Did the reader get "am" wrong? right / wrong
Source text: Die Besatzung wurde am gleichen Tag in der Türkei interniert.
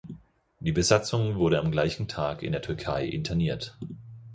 right